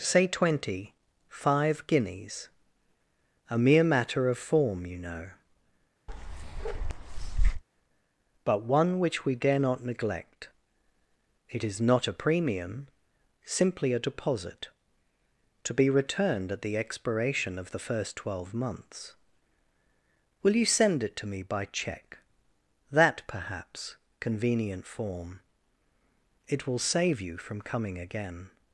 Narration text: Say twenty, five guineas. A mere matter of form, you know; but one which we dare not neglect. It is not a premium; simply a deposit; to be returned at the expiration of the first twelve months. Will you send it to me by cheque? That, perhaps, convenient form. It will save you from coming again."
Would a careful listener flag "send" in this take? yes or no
no